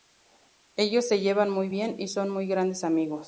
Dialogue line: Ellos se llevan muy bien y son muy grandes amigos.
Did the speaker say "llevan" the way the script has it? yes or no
yes